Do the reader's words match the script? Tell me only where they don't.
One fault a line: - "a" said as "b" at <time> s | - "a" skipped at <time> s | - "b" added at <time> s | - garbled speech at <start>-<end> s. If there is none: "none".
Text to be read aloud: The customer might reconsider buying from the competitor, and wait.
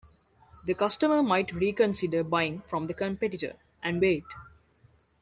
none